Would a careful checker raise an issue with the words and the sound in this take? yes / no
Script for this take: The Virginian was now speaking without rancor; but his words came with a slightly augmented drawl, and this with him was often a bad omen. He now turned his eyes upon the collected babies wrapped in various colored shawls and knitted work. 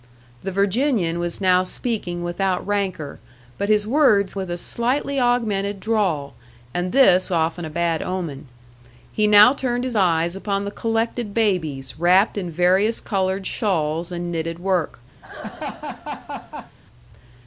yes